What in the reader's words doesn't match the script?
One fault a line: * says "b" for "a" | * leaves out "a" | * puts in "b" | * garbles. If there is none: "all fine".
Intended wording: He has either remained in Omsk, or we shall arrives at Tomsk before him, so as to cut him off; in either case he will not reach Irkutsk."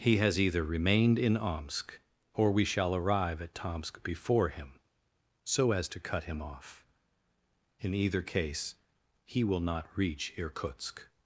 * says "arrive" for "arrives"